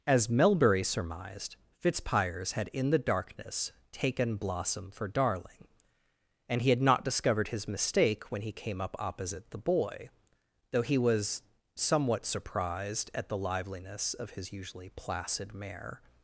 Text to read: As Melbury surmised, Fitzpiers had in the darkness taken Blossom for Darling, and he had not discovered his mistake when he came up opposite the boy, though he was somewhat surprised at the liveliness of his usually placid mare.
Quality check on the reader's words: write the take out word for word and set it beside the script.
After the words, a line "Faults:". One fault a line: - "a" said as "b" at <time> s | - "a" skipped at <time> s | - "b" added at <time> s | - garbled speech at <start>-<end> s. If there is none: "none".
As Melbury surmised, Fitzpiers had in the darkness taken Blossom for Darling, and he had not discovered his mistake when he came up opposite the boy, though he was somewhat surprised at the liveliness of his usually placid mare.
Faults:
none